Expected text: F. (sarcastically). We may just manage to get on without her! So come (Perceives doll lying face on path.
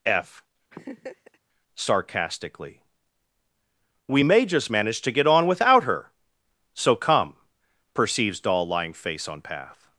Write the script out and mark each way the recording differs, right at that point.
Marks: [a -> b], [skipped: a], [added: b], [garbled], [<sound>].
F. [laugh] (sarcastically). We may just manage to get on without her! So come (Perceives doll lying face on path.